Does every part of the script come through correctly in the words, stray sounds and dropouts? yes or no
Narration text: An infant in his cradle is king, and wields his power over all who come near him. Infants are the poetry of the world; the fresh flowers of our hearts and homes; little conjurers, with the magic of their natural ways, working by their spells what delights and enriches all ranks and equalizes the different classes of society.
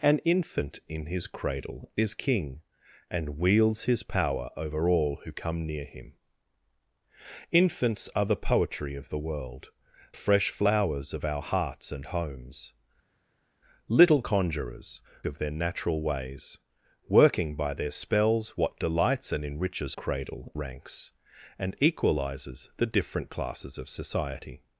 no